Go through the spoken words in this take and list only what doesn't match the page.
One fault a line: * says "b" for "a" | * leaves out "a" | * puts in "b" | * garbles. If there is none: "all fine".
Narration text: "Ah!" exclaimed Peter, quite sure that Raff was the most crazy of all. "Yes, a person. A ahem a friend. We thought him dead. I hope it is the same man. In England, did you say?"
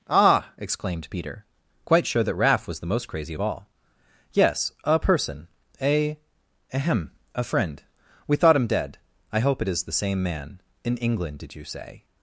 all fine